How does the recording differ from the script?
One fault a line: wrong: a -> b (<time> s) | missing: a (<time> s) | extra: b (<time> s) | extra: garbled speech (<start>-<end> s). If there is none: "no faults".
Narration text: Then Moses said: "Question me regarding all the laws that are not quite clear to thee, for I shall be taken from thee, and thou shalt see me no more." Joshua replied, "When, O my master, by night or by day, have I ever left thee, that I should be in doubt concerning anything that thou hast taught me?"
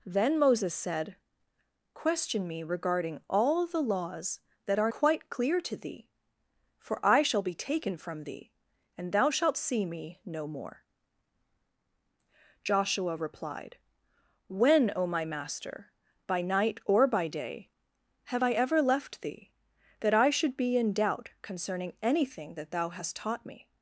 missing: not (4.9 s)